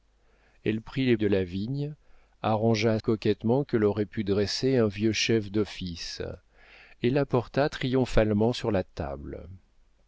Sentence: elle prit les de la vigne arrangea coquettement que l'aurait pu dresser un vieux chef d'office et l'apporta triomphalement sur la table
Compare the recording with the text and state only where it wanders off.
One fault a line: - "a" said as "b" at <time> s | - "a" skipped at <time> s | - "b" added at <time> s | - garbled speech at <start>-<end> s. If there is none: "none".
none